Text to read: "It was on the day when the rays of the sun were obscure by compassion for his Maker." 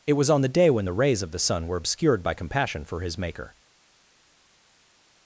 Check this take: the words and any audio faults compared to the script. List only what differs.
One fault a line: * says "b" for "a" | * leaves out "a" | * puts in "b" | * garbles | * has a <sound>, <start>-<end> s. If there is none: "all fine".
* says "obscured" for "obscure"